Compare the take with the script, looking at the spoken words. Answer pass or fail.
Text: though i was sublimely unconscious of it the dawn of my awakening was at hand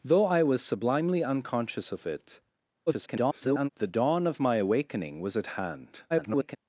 fail